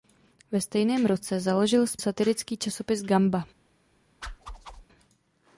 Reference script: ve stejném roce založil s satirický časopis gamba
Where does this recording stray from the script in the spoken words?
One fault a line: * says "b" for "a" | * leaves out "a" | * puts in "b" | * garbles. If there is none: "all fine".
all fine